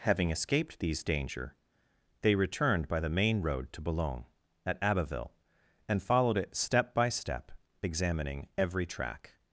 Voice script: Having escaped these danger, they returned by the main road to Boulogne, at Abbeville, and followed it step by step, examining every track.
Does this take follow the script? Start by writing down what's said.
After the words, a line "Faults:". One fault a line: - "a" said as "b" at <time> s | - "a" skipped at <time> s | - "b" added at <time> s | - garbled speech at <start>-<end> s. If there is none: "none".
Having escaped these danger, they returned by the main road to Boulogne, at Abbeville, and followed it step by step, examining every track.
Faults:
none